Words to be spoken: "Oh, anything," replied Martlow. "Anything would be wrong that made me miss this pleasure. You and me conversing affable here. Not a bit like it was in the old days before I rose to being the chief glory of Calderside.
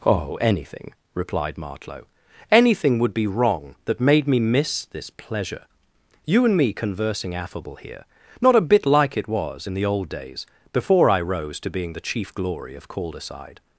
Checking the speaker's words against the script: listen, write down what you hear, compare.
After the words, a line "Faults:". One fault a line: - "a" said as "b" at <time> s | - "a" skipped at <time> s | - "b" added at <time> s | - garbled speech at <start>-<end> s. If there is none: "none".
"Oh, anything," replied Martlow. "Anything would be wrong that made me miss this pleasure. You and me conversing affable here. Not a bit like it was in the old days before I rose to being the chief glory of Calderside.
Faults:
none